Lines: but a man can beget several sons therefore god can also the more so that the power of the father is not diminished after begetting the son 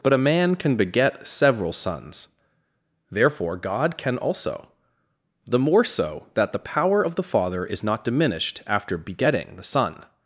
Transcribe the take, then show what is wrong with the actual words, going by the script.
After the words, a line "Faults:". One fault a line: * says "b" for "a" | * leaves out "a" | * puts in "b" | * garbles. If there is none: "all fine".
but a man can beget several sons therefore god can also the more so that the power of the father is not diminished after begetting the son
Faults:
all fine